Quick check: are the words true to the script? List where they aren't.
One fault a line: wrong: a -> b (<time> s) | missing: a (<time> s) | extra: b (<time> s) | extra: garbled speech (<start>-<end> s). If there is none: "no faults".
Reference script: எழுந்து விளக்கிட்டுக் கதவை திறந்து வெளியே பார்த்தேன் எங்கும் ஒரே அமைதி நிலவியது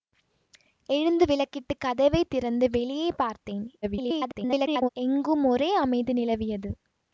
extra: garbled speech (3.8-4.9 s)